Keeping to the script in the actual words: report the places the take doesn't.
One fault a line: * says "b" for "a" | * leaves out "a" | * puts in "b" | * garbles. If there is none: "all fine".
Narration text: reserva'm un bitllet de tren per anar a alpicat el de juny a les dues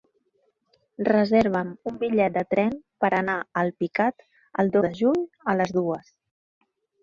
all fine